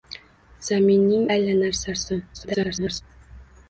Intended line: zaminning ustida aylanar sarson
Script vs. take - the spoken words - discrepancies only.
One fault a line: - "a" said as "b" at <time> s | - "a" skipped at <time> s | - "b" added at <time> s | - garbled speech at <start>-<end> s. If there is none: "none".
- "ustida" skipped at 1.3 s
- garbled speech at 2.3-3.0 s